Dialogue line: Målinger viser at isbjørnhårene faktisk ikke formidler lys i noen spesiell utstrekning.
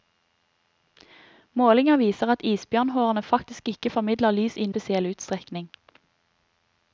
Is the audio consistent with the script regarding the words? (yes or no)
no